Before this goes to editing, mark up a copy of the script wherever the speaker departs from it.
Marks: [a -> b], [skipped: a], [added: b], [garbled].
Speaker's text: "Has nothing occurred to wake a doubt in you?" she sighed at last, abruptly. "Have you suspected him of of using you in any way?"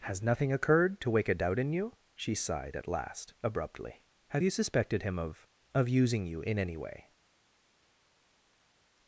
"Has nothing occurred to wake a doubt in you?" she sighed at last, abruptly. "Have you suspected him of of using you in any way?"